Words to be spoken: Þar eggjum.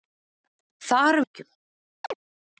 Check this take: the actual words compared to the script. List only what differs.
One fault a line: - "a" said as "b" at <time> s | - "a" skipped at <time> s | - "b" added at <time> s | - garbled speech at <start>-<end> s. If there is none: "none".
none